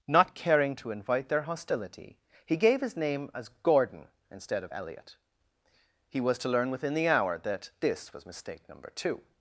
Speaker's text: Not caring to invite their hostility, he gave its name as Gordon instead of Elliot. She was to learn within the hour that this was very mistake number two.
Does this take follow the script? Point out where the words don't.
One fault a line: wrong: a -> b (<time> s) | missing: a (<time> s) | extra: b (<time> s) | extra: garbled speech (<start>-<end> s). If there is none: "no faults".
wrong: its -> his (2.8 s)
wrong: She -> He (6.1 s)
missing: very (8.2 s)